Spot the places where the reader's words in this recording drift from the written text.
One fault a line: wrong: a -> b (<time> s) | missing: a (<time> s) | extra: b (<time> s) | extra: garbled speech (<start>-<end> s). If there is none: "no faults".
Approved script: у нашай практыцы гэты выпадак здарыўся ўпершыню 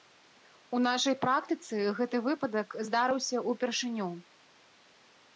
no faults